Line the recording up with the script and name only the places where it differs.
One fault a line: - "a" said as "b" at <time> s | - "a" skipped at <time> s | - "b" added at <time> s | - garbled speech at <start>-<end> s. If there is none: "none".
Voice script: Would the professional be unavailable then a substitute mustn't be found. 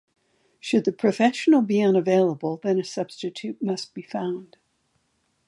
- "Would" said as "Should" at 0.6 s
- "mustn't" said as "must" at 3.6 s